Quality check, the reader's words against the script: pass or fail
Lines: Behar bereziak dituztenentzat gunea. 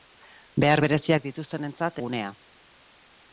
pass